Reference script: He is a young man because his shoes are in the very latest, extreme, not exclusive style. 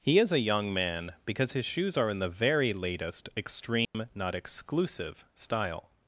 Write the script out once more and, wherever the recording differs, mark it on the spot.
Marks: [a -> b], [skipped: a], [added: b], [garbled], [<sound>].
He is a young man because his shoes are in the very latest, extreme, [dropout] not exclusive style.